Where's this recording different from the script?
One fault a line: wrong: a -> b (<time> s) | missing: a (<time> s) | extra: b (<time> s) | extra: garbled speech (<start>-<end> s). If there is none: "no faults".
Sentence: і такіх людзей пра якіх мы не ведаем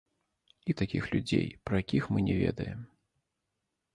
no faults